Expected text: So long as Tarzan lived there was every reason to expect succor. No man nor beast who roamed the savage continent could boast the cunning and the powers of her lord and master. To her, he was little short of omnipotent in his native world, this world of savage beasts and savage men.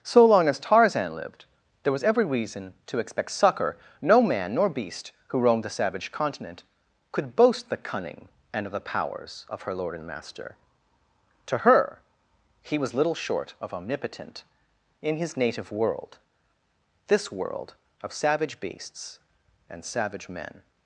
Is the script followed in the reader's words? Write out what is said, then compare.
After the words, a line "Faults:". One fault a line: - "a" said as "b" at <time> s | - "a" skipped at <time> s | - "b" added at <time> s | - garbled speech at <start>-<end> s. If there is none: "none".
So long as Tarzan lived there was every reason to expect succor. No man nor beast who roamed the savage continent could boast the cunning and of the powers of her lord and master. To her, he was little short of omnipotent in his native world, this world of savage beasts and savage men.
Faults:
- "of" added at 8.7 s